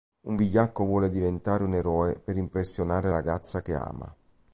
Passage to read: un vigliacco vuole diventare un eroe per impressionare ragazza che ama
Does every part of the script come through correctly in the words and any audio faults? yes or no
yes